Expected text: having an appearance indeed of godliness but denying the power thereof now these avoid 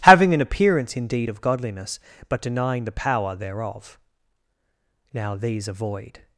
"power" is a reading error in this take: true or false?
false